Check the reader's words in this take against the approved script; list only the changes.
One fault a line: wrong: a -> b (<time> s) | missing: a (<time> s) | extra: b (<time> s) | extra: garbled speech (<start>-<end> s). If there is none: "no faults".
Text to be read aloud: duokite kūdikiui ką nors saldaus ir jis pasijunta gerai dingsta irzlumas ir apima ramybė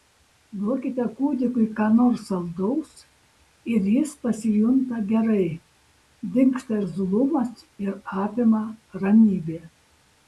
no faults